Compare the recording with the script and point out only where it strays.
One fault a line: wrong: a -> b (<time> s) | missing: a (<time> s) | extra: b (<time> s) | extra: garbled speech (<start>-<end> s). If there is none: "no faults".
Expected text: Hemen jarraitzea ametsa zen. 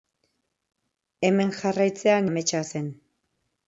no faults